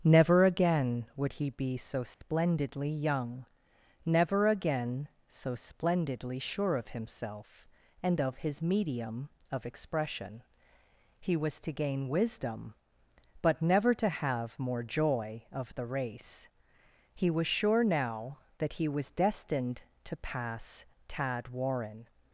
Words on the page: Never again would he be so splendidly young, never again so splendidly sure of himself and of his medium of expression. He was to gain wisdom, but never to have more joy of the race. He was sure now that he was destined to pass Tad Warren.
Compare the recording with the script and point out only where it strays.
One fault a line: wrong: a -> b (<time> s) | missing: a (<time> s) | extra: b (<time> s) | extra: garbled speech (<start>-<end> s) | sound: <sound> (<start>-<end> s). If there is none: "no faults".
sound: dropout (2.1-2.2 s)